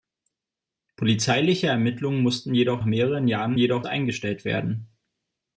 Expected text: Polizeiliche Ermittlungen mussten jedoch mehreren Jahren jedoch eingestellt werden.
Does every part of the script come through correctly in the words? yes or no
yes